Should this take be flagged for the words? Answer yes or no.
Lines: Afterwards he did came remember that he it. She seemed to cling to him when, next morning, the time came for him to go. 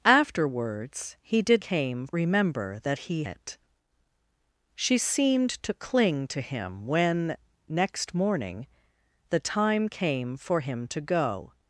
no